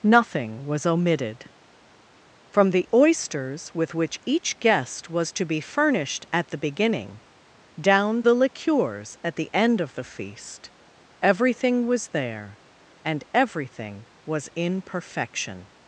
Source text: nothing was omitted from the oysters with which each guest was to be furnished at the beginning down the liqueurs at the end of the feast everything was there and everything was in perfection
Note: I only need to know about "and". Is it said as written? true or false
true